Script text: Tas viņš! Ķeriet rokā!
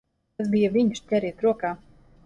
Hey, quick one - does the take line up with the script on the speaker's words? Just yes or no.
no